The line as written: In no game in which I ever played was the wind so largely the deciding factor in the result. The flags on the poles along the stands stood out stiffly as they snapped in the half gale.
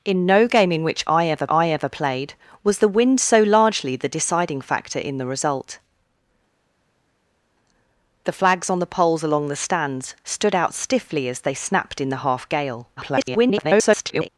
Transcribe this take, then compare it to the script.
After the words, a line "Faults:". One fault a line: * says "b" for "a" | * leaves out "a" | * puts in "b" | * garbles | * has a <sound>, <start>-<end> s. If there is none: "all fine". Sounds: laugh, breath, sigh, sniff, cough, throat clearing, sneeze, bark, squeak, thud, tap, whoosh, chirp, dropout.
In no game in which I ever I ever played was the wind so largely the deciding factor in the result. The flags on the poles along the stands stood out stiffly as they snapped in the half gale. [garbled]
Faults:
* puts in "I ever"
* garbles